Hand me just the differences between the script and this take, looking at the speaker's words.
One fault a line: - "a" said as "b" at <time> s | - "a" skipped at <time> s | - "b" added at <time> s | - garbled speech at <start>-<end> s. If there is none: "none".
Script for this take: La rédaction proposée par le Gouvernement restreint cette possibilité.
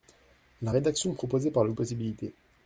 - "Gouvernement restreint cette" skipped at 1.7 s